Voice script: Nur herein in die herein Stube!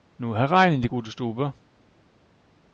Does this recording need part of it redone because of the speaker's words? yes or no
yes